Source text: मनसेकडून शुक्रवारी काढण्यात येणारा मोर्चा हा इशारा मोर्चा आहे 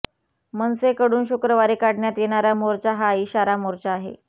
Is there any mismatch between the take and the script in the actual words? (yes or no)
no